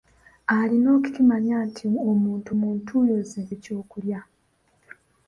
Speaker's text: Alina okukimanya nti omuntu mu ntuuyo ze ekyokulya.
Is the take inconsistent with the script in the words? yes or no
no